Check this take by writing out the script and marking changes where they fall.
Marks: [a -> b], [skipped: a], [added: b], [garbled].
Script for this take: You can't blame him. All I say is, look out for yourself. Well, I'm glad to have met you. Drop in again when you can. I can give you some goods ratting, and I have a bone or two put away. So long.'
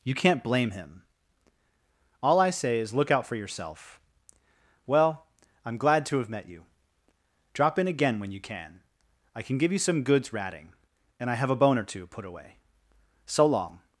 You can't blame him. All I say is, look out for yourself. Well, I'm glad to have met you. Drop in again when you can. I can give you some goods ratting, and I have a bone or two put away. So long.'